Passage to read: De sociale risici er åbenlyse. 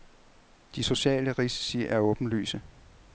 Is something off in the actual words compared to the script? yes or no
no